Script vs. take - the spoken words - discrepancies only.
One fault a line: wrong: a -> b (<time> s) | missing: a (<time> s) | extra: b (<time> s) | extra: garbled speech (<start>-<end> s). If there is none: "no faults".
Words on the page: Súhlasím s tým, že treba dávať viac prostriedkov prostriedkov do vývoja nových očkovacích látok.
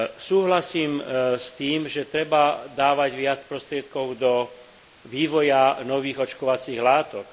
missing: prostriedkov (4.2 s)